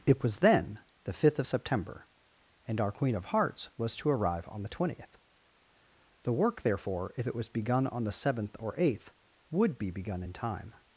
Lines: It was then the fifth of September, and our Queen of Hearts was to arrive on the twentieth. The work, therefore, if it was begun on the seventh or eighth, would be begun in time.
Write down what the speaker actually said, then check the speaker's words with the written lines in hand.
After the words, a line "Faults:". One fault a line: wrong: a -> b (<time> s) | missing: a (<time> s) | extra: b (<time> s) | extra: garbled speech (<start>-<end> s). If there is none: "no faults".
It was then the fifth of September, and our Queen of Hearts was to arrive on the twentieth. The work, therefore, if it was begun on the seventh or eighth, would be begun in time.
Faults:
no faults